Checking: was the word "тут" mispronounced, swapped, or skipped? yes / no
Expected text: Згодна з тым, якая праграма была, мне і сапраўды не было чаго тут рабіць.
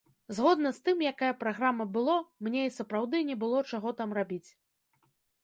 yes